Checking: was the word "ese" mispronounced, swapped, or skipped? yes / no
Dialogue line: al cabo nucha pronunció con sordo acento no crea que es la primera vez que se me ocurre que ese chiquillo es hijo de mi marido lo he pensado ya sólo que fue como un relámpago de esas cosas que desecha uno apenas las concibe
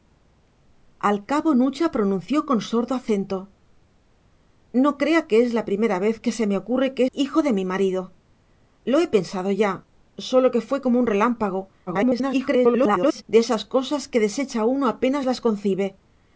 yes